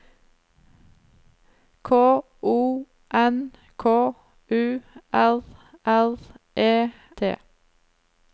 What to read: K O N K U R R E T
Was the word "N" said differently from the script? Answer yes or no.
no